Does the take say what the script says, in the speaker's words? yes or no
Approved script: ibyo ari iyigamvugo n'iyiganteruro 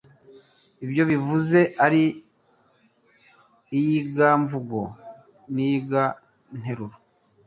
no